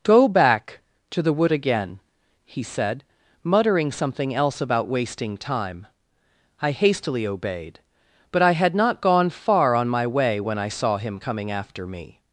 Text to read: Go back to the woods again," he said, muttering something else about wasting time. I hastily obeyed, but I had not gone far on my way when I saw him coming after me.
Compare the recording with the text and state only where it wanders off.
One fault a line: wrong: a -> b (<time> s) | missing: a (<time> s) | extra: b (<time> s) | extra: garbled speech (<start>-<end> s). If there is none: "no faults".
wrong: woods -> wood (1.3 s)